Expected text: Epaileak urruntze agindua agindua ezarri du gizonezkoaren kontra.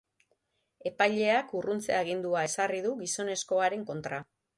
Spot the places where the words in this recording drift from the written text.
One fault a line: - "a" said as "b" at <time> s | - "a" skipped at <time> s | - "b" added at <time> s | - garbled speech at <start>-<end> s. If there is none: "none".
- "agindua" skipped at 2.4 s